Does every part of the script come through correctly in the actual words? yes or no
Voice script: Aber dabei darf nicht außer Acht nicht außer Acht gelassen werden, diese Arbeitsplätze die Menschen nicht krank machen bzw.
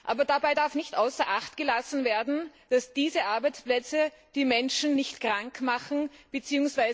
no